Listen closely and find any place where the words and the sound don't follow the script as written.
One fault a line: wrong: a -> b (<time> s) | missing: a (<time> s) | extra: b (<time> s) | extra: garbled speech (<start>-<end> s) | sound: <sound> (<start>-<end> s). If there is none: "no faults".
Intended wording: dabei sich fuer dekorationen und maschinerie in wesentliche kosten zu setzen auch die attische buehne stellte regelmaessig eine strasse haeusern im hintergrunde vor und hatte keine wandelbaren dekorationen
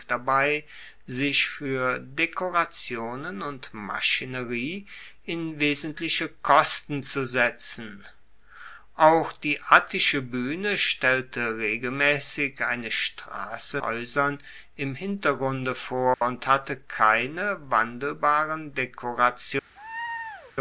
sound: dropout (16.1-16.2 s)
sound: laugh (19.8-20.5 s)